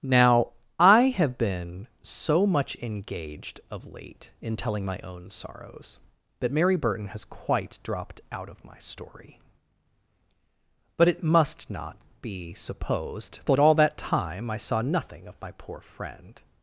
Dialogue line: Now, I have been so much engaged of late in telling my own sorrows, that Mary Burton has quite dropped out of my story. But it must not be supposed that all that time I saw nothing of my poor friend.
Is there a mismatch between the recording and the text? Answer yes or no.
no